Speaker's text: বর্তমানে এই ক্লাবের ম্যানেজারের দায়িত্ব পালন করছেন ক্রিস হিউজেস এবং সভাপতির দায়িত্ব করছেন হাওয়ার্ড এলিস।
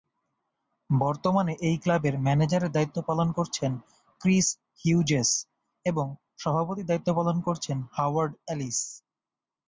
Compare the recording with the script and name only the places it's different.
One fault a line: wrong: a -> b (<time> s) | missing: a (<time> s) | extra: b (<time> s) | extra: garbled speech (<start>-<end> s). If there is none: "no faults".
extra: পালন (7.2 s)